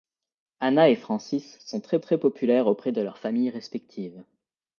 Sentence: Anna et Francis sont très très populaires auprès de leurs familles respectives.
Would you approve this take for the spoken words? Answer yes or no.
yes